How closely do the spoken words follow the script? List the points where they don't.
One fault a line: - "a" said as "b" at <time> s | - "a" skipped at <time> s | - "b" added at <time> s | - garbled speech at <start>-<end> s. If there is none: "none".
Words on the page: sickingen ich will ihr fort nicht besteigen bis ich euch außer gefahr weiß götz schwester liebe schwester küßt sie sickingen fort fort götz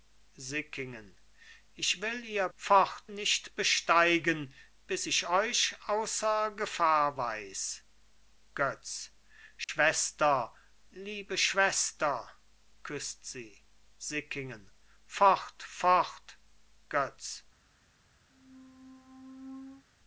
none